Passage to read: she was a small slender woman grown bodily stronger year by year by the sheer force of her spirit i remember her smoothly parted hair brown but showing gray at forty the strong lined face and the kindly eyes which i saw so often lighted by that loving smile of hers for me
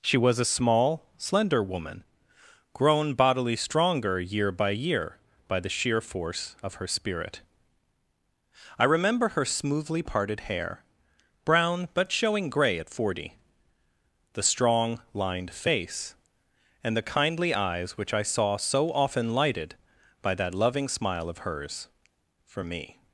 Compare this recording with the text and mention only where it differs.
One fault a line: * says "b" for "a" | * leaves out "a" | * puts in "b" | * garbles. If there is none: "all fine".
all fine